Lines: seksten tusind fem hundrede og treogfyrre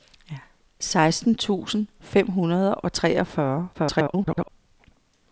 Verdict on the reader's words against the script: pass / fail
fail